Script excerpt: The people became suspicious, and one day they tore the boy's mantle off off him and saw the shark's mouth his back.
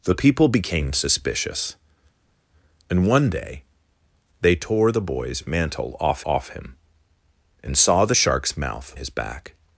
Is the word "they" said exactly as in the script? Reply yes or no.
yes